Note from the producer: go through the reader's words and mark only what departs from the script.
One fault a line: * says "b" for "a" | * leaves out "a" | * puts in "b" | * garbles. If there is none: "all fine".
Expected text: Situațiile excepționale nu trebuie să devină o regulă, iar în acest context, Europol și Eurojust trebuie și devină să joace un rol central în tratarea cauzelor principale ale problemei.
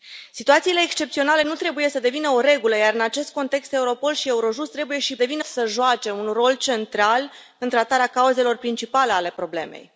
all fine